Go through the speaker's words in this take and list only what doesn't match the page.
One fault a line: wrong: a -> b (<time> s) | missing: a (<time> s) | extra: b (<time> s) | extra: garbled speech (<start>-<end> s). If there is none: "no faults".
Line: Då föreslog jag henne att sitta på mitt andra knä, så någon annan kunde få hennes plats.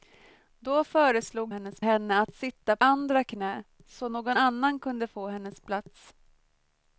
wrong: jag -> hennes (1.5 s)
missing: på mitt (2.8 s)